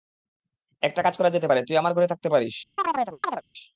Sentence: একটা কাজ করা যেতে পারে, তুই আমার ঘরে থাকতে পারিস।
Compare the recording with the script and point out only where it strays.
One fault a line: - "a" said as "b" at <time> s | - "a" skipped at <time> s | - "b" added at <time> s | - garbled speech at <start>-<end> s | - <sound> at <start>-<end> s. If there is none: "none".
- chirp at 2.8-3.4 s